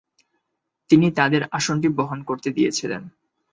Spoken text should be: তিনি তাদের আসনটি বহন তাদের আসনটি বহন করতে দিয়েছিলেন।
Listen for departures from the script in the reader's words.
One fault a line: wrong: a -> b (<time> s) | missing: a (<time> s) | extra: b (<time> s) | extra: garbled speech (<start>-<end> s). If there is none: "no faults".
missing: তাদের আসনটি বহন (2.2 s)